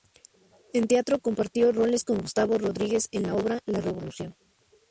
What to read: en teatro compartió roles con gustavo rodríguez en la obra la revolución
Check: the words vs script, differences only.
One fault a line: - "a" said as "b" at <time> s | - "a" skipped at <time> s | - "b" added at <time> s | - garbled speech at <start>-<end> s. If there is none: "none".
none